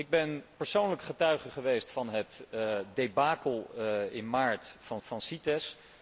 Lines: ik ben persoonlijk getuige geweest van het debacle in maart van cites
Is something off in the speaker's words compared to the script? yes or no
yes